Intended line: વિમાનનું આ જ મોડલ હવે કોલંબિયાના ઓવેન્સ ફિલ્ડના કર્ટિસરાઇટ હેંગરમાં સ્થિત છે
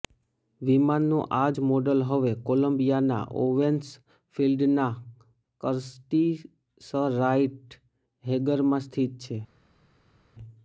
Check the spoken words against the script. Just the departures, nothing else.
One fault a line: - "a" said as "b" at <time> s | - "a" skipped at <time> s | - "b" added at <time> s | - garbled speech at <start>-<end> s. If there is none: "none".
none